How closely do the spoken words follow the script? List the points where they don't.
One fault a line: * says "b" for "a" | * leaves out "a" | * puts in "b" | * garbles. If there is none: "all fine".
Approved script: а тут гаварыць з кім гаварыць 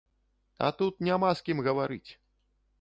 * says "няма" for "гаварыць"